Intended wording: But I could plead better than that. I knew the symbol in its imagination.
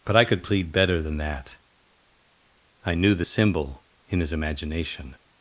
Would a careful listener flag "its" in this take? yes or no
yes